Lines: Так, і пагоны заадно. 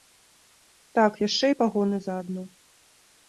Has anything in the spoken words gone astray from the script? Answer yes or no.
yes